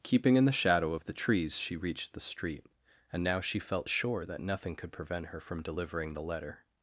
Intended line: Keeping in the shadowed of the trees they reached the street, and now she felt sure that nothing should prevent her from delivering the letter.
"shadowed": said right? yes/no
no